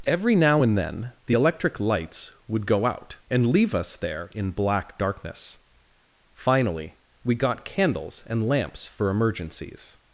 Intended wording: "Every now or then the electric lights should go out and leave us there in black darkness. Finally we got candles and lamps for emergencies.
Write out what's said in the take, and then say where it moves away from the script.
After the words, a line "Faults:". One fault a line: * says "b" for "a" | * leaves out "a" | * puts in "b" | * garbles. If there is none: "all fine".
"Every now and then the electric lights would go out and leave us there in black darkness. Finally we got candles and lamps for emergencies.
Faults:
* says "and" for "or"
* says "would" for "should"